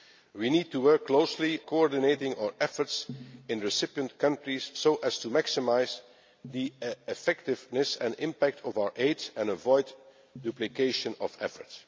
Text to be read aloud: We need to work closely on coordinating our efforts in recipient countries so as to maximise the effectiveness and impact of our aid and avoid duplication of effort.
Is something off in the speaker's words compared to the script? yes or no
yes